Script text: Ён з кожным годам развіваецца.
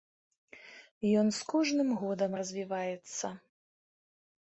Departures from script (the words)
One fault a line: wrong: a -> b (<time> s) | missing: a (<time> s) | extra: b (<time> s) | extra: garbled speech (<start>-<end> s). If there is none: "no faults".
no faults